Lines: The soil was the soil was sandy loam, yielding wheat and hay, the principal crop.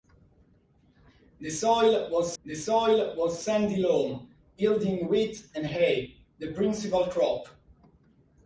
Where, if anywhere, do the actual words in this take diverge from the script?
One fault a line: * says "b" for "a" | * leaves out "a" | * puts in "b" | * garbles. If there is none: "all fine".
all fine